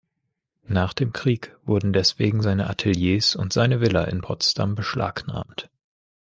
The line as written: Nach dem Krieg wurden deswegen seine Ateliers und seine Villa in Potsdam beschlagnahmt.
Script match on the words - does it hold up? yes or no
yes